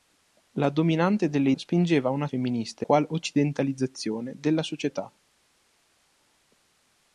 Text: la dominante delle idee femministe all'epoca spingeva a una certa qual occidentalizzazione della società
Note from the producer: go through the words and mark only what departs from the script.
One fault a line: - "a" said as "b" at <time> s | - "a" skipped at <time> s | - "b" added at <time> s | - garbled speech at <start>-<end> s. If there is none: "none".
- "idee femministe all'epoca" skipped at 1.5 s
- "certa" said as "femministe" at 2.2 s